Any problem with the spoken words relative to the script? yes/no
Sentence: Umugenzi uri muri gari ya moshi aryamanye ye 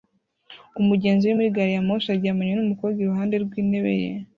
yes